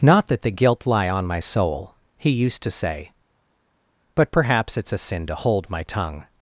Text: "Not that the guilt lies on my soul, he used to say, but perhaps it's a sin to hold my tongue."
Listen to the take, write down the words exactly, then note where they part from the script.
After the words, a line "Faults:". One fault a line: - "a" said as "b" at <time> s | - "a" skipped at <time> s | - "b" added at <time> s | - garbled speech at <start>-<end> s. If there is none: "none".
"Not that the guilt lie on my soul, he used to say, but perhaps it's a sin to hold my tongue."
Faults:
- "lies" said as "lie" at 0.9 s